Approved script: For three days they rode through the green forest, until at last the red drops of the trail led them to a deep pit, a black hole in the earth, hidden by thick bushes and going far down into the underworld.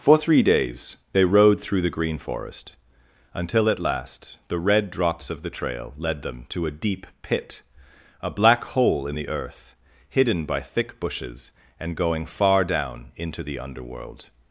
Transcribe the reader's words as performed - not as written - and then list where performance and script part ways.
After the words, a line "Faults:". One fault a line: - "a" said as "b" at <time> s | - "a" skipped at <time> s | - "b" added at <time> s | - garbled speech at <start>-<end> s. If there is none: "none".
For three days they rode through the green forest, until at last the red drops of the trail led them to a deep pit, a black hole in the earth, hidden by thick bushes and going far down into the underworld.
Faults:
none